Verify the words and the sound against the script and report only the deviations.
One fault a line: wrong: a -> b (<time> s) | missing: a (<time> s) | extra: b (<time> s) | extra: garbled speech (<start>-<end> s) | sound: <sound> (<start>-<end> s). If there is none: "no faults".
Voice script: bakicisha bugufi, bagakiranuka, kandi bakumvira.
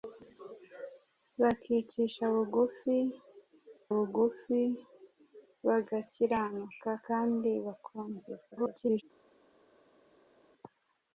extra: bugufi (3.9 s)
extra: garbled speech (8.5-9.0 s)